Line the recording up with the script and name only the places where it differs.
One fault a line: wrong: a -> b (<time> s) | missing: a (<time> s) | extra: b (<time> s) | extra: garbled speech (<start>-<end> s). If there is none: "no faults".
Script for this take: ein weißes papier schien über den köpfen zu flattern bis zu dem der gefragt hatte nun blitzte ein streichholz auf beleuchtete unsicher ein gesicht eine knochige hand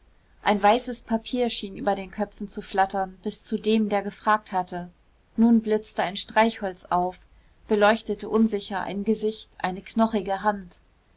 no faults